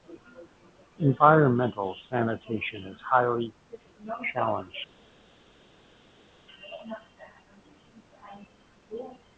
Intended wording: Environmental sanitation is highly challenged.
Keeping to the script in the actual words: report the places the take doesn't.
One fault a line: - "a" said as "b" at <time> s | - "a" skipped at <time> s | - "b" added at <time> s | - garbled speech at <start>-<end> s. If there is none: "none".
none